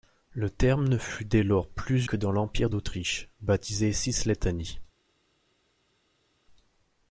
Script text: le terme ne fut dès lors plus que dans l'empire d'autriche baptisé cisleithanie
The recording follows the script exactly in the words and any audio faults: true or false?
true